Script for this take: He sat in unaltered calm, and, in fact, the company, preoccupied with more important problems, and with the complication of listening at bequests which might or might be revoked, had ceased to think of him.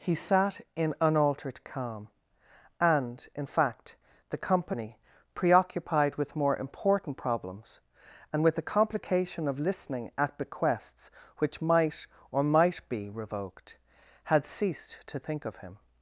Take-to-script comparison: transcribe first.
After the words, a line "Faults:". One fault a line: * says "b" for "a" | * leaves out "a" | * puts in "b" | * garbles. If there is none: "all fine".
He sat in unaltered calm, and, in fact, the company, preoccupied with more important problems, and with the complication of listening at bequests which might or might be revoked, had ceased to think of him.
Faults:
all fine